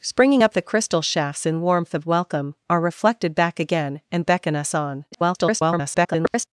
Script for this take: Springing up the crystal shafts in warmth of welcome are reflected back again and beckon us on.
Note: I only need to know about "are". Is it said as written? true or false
true